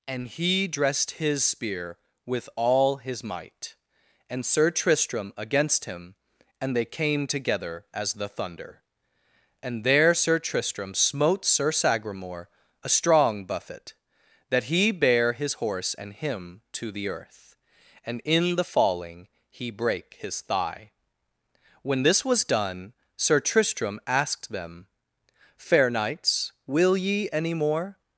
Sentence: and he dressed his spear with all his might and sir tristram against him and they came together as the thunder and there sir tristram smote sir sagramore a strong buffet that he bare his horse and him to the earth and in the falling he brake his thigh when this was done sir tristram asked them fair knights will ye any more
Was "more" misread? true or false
false